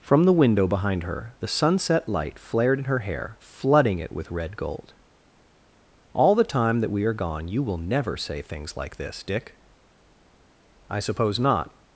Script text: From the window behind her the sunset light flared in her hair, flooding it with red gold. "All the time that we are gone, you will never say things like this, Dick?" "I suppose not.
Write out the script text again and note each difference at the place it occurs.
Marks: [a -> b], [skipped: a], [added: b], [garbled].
From the window behind her the sunset light flared in her hair, flooding it with red gold. "All the time that we are gone, you will never say things like this, Dick?" "I suppose not.